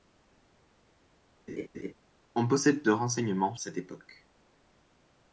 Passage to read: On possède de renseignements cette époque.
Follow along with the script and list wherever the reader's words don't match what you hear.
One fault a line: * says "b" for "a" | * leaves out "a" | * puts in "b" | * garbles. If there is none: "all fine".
all fine